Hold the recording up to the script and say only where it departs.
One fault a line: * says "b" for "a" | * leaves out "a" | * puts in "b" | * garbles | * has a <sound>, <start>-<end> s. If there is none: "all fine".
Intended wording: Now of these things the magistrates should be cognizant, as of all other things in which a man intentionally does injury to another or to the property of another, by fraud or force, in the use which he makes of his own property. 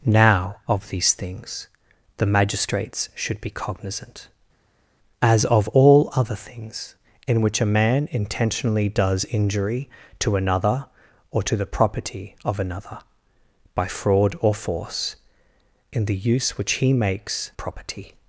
* leaves out "of his own"